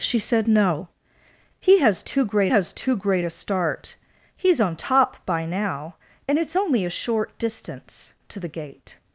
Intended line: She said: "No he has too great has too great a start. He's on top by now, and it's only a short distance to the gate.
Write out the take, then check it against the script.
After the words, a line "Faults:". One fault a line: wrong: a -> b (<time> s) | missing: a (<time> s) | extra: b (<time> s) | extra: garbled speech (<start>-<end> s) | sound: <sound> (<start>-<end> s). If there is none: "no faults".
She said: "No he has too great has too great a start. He's on top by now, and it's only a short distance to the gate.
Faults:
no faults